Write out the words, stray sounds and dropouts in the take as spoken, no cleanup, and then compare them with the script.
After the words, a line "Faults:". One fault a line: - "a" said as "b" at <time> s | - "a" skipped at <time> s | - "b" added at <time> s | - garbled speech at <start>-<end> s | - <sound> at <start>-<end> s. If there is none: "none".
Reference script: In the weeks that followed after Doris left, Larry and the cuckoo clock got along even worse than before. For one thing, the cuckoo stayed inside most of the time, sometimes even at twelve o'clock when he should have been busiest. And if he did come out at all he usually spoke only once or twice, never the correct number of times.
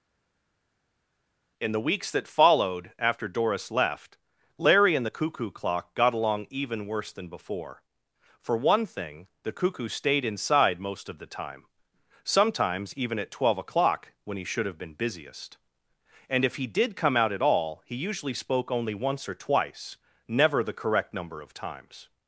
In the weeks that followed after Doris left, Larry and the cuckoo clock got along even worse than before. For one thing, the cuckoo stayed inside most of the time, sometimes even at twelve o'clock when he should have been busiest. And if he did come out at all he usually spoke only once or twice, never the correct number of times.
Faults:
none